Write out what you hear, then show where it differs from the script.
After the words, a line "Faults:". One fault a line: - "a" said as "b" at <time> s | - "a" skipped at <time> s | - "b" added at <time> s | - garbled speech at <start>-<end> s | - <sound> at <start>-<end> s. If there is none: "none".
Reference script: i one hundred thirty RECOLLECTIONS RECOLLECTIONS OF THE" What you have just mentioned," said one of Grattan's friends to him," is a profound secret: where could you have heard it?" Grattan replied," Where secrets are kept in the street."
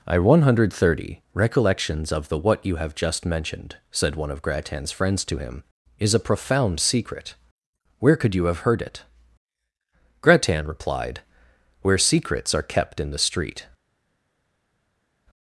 i one hundred thirty RECOLLECTIONS OF THE" What you have just mentioned," said one of Grattan's friends to him," is a profound secret: where could you have heard it?" Grattan replied," Where secrets are kept in the street."
Faults:
- "RECOLLECTIONS" skipped at 2.1 s